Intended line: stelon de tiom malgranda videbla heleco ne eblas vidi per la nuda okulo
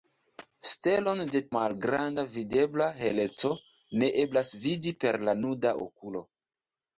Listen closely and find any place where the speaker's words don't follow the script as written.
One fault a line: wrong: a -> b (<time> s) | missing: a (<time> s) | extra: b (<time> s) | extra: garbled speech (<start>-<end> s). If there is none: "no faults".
missing: tiom (1.4 s)